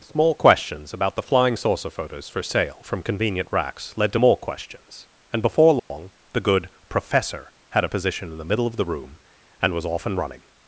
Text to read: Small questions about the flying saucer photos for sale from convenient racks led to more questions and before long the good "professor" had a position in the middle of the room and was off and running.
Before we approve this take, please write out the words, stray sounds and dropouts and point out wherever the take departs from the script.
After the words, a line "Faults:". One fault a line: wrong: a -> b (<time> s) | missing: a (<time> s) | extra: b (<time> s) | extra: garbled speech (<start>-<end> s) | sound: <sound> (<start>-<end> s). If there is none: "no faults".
Small questions about the flying saucer photos for sale from convenient racks led to more questions and before long the good "professor" had a position in the middle of the room and was off and running.
Faults:
sound: dropout (5.8-5.9 s)